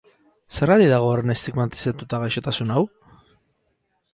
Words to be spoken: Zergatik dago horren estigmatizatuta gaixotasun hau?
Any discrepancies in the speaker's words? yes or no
no